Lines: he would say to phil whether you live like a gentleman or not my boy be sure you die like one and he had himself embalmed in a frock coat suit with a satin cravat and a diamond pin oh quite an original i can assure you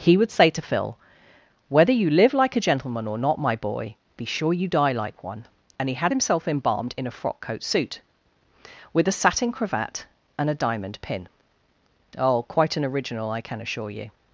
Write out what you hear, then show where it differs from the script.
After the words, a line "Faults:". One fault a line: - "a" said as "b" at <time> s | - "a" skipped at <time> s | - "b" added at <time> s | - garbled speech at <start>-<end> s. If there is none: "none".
he would say to phil whether you live like a gentleman or not my boy be sure you die like one and he had himself embalmed in a frock coat suit with a satin cravat and a diamond pin oh quite an original i can assure you
Faults:
none